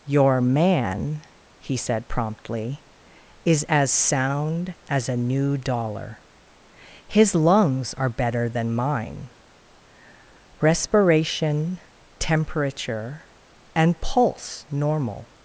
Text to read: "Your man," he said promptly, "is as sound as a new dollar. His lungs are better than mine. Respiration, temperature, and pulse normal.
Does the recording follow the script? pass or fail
pass